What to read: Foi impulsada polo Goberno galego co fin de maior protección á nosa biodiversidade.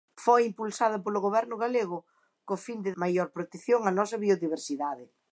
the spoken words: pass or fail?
pass